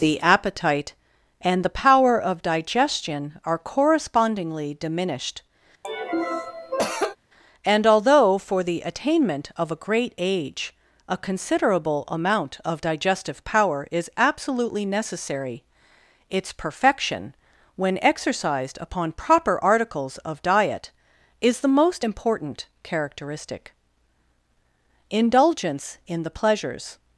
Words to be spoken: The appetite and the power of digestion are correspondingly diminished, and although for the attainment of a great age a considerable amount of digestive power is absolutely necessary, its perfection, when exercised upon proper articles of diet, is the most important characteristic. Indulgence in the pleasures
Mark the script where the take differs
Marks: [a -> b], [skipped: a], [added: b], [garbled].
The appetite and the power of digestion are correspondingly diminished, and although for the attainment of a great age a considerable amount of digestive power is absolutely necessary, its perfection, when exercised upon proper articles of diet, is the most important characteristic. Indulgence in the pleasures